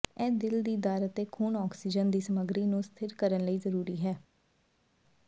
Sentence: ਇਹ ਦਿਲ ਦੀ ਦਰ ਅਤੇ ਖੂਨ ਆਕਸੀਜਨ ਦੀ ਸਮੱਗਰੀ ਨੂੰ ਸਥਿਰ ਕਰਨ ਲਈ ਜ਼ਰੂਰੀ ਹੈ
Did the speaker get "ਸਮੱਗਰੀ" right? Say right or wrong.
right